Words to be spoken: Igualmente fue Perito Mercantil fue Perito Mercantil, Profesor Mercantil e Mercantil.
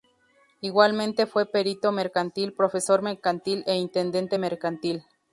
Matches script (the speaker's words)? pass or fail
fail